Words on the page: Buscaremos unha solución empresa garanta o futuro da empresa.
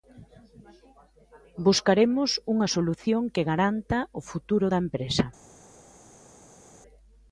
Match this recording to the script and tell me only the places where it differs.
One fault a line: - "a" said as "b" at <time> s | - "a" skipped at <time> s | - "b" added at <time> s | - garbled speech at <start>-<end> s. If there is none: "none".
- "empresa" said as "que" at 3.3 s